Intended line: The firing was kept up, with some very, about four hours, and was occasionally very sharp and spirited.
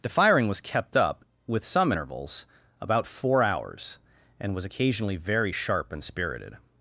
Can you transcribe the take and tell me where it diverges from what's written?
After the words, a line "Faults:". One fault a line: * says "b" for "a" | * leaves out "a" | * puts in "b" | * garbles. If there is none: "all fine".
The firing was kept up, with some intervals, about four hours, and was occasionally very sharp and spirited.
Faults:
* says "intervals" for "very"